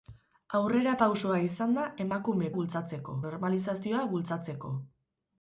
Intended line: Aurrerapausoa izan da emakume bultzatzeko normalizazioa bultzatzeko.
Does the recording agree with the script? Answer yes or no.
yes